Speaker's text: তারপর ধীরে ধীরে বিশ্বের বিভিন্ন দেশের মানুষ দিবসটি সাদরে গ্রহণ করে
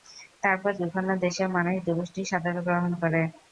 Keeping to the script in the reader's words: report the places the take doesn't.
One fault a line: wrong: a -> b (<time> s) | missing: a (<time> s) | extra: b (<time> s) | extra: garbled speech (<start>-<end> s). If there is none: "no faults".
missing: ধীরে ধীরে বিশ্বের (0.7 s)